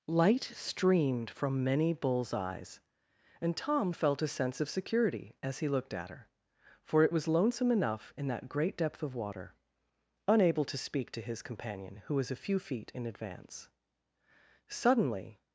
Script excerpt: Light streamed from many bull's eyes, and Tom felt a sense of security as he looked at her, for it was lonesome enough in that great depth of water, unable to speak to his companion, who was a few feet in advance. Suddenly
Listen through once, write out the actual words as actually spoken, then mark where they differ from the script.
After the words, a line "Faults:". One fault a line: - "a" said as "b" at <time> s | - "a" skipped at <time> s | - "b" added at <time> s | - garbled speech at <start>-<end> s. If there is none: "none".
Light streamed from many bull's eyes, and Tom felt a sense of security as he looked at her, for it was lonesome enough in that great depth of water, unable to speak to his companion, who was a few feet in advance. Suddenly
Faults:
none